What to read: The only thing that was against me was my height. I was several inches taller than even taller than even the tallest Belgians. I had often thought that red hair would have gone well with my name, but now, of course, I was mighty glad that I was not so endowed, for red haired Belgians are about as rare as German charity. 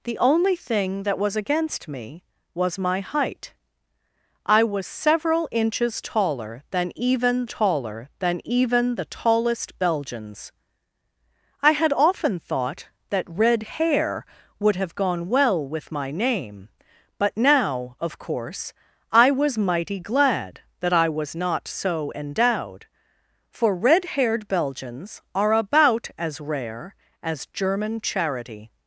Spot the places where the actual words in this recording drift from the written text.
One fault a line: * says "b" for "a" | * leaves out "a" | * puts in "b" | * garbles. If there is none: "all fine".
all fine